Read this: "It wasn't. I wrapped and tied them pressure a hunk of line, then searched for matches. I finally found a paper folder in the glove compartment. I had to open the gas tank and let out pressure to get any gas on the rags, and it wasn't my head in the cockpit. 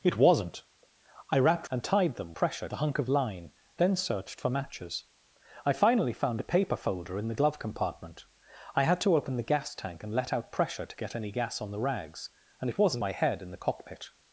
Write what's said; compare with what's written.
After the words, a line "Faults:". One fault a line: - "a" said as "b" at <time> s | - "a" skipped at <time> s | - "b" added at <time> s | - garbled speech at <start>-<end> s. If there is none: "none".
"It wasn't. I wrapped and tied them pressure a hunk of line, then searched for matches. I finally found a paper folder in the glove compartment. I had to open the gas tank and let out pressure to get any gas on the rags, and it wasn't my head in the cockpit.
Faults:
none